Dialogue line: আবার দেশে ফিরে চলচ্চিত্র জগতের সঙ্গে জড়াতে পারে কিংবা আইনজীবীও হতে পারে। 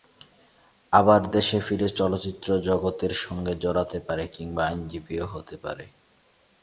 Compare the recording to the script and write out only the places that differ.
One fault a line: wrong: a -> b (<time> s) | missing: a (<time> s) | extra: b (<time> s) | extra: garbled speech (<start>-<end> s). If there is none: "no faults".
no faults